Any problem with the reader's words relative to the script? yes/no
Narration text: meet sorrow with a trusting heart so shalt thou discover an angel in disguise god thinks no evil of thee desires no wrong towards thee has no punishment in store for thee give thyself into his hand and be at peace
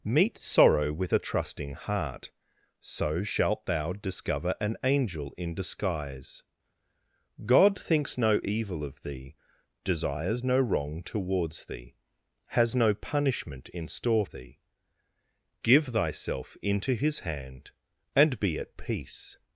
yes